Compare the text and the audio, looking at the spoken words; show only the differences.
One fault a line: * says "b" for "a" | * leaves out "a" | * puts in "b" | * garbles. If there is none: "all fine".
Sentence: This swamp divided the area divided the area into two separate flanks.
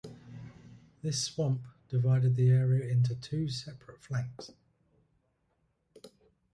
* leaves out "divided the area"